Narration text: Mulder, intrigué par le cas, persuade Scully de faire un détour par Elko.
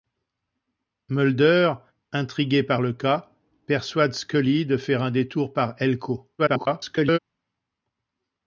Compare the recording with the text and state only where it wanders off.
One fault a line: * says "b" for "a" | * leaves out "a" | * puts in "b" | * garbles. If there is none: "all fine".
* garbles